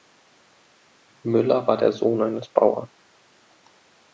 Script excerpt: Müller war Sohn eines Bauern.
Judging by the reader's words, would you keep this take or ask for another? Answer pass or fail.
fail